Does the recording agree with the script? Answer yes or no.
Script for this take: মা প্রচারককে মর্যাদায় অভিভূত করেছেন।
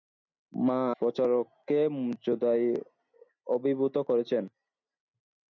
yes